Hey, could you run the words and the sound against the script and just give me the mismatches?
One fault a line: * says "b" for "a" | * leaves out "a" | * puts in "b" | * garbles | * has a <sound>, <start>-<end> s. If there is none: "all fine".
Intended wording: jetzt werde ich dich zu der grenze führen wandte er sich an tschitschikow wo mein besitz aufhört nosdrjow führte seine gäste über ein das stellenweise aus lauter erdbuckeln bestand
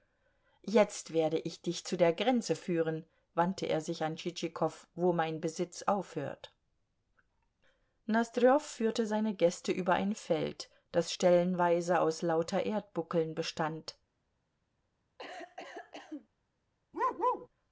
* puts in "feld"
* has a cough, 15.2-16.3 s
* has a bark, 16.9-17.5 s